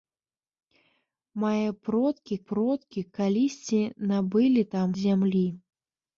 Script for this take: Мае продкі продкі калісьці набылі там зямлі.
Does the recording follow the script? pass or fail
pass